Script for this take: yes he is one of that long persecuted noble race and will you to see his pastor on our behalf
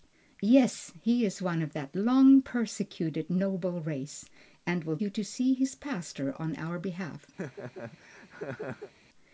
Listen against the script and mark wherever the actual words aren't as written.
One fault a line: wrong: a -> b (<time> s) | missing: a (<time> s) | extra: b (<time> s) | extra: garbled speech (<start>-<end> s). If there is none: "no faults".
no faults